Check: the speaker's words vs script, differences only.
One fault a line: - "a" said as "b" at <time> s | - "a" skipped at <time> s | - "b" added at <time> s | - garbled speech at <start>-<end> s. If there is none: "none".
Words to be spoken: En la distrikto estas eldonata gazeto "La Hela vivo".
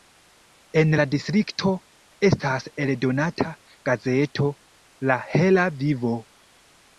none